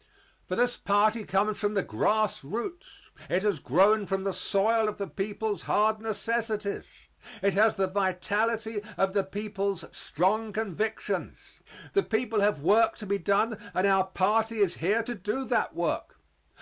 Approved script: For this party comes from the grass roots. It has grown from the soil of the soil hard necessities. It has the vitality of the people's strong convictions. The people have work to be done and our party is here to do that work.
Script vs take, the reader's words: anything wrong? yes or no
yes